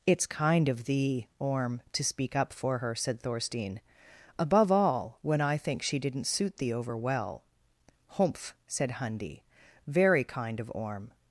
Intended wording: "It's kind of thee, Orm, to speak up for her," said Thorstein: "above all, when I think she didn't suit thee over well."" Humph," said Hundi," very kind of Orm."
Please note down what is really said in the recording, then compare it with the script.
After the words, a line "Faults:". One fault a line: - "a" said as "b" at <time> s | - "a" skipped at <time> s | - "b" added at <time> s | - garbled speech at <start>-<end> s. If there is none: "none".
"It's kind of thee, Orm, to speak up for her," said Thorstein: "above all, when I think she didn't suit thee over well."" Humph," said Hundi," very kind of Orm."
Faults:
none